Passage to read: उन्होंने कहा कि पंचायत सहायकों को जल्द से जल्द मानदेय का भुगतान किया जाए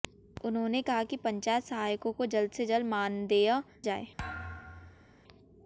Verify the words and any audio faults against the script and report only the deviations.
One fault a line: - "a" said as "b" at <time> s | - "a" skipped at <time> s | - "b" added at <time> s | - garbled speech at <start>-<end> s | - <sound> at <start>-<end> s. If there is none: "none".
- "का भुगतान किया" skipped at 3.6 s
- thud at 4.2-5.1 s